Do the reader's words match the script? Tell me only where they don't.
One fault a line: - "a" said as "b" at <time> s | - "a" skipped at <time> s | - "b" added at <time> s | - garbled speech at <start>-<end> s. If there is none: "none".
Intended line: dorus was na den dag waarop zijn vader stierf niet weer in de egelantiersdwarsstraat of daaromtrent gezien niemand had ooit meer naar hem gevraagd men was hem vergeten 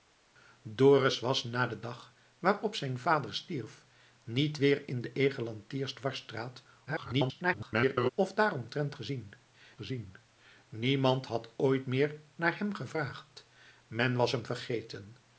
- garbled speech at 6.9-8.1 s
- "gezien" added at 9.7 s